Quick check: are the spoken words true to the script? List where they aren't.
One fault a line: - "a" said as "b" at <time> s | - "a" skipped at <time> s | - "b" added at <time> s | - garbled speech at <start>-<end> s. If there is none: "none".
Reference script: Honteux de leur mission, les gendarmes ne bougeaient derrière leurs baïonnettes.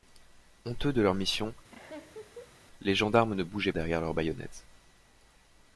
none